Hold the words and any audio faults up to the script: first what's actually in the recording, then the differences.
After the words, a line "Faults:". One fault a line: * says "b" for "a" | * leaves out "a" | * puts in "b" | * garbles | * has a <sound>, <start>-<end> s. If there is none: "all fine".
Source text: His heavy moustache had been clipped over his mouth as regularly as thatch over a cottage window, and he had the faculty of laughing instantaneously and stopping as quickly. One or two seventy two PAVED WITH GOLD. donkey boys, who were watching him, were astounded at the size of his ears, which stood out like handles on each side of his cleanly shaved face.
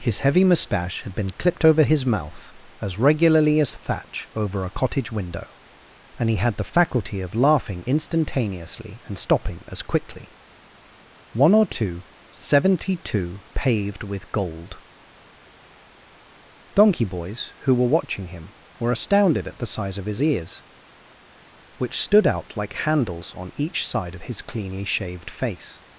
His heavy moustache had been clipped over his mouth as regularly as thatch over a cottage window, and he had the faculty of laughing instantaneously and stopping as quickly. One or two seventy two PAVED WITH GOLD. donkey boys, who were watching him, were astounded at the size of his ears, which stood out like handles on each side of his cleanly shaved face.
Faults:
all fine